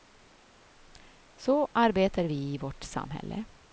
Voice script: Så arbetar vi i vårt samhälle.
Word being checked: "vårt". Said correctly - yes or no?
yes